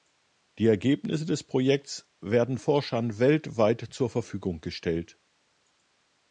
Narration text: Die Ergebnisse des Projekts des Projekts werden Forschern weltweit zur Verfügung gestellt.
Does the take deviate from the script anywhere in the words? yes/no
yes